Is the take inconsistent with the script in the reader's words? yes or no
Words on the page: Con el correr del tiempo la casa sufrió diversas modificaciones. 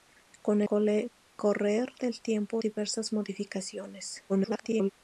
yes